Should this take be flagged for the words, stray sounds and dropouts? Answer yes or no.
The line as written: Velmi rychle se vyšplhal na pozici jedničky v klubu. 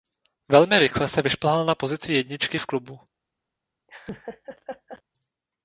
yes